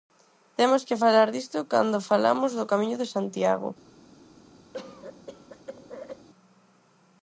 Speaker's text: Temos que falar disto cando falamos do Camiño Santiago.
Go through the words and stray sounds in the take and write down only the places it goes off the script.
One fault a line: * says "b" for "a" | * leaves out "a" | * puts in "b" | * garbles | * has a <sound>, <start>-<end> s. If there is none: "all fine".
* puts in "de"
* has a cough, 4.7-6.3 s